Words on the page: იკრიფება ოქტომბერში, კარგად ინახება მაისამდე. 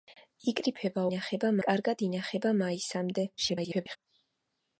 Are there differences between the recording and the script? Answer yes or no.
yes